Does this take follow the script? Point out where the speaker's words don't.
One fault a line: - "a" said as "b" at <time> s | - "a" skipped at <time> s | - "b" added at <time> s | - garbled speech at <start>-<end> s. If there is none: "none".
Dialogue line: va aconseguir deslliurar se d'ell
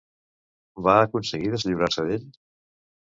none